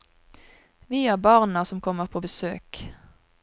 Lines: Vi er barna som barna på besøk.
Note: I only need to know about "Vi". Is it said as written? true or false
true